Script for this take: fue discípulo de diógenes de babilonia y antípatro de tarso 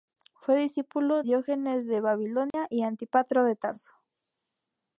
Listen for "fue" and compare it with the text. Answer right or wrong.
right